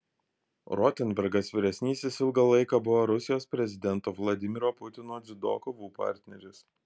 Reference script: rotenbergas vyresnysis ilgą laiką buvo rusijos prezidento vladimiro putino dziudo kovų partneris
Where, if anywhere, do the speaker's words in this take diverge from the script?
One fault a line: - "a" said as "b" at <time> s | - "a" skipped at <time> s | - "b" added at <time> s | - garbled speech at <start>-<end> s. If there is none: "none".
none